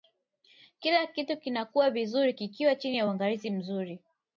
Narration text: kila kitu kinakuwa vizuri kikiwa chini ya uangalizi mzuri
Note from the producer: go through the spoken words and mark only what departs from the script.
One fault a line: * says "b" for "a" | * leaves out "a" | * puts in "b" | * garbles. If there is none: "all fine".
all fine